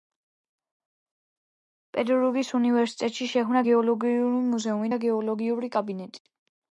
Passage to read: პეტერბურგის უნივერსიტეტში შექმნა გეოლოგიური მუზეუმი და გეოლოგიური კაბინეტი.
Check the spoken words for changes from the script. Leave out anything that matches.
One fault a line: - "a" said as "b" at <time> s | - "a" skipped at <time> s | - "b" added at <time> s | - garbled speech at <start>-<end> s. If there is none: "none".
none